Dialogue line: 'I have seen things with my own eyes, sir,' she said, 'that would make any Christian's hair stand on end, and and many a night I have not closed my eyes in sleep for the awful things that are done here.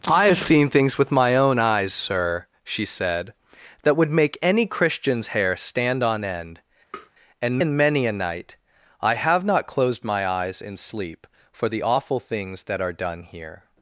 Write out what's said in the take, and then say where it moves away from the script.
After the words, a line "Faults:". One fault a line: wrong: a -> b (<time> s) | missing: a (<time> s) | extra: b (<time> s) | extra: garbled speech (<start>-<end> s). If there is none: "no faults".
'I have seen things with my own eyes, sir,' she said, 'that would make any Christian's hair stand on end, and and many a night I have not closed my eyes in sleep for the awful things that are done here.
Faults:
no faults